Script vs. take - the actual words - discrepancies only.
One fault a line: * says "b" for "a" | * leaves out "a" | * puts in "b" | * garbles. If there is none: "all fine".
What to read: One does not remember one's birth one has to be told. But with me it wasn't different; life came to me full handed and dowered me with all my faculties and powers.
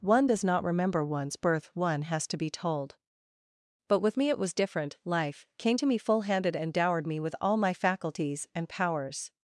* says "was" for "wasn't"